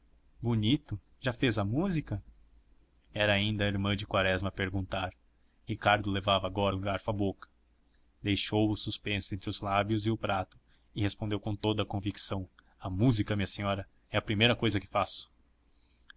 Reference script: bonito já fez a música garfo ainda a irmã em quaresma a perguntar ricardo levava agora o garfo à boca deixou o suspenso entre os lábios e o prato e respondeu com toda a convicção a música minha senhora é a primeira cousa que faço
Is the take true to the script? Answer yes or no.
no